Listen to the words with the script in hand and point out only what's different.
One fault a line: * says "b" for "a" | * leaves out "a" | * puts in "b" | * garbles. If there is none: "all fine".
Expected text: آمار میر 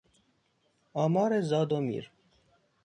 * puts in "زاد و"